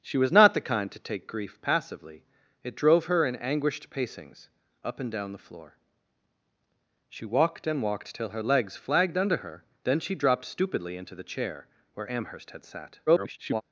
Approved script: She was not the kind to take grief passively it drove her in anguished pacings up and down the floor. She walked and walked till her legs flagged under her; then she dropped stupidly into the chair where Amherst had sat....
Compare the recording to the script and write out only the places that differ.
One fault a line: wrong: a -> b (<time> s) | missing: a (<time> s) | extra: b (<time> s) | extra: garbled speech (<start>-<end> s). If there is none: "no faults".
extra: garbled speech (13.1-13.6 s)